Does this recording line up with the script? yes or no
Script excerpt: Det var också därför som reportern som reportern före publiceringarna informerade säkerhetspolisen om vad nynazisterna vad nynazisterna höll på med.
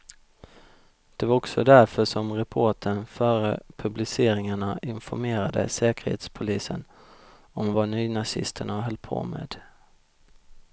no